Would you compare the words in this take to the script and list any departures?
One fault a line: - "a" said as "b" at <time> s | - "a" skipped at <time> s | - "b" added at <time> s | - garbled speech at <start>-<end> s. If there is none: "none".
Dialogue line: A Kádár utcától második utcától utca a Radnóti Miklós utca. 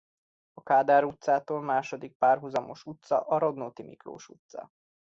- "utcától" said as "párhuzamos" at 2.2 s